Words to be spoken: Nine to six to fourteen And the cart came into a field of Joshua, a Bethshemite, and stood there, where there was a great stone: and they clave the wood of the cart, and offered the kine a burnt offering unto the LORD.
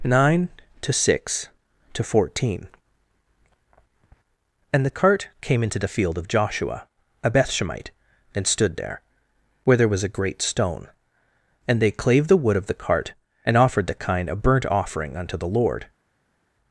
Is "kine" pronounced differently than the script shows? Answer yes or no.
no